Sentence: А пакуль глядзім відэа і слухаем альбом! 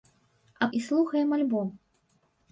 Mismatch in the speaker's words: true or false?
true